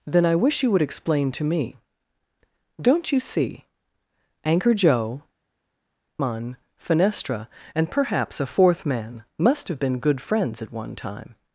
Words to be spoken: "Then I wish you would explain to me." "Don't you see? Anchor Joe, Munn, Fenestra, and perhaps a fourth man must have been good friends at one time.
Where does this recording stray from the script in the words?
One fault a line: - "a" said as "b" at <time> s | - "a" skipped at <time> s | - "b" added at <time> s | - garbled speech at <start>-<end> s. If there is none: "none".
none